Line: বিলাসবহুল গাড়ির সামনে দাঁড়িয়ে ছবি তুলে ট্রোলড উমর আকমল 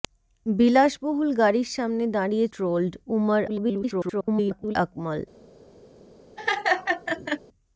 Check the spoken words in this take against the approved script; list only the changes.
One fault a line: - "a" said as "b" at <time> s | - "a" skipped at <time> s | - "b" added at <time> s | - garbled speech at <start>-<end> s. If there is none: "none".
- "ছবি তুলে" skipped at 2.5 s
- garbled speech at 3.5-4.8 s